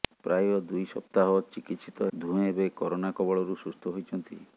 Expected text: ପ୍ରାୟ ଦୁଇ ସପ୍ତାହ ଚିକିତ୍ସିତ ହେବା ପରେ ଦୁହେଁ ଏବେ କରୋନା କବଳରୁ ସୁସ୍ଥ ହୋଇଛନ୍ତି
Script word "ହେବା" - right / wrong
wrong